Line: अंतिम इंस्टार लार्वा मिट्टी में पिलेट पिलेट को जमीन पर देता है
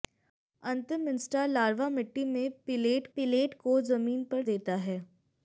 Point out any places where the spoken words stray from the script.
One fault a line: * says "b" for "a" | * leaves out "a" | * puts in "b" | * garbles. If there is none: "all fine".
all fine